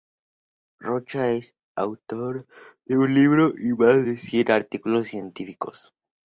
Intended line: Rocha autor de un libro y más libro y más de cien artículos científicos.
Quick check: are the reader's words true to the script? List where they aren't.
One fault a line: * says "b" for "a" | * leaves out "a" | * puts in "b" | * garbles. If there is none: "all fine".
* puts in "es"
* leaves out "libro y más"